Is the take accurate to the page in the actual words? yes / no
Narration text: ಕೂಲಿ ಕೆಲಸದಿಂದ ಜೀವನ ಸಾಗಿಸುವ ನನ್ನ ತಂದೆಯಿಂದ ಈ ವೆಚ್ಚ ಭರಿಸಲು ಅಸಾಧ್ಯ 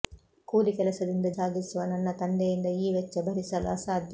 no